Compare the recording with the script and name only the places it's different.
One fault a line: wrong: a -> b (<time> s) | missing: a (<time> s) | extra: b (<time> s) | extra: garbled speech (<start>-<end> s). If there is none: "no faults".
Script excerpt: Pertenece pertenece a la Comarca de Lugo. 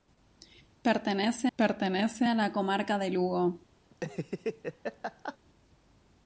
no faults